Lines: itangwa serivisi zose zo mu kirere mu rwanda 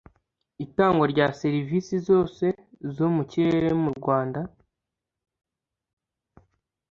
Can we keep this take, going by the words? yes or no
no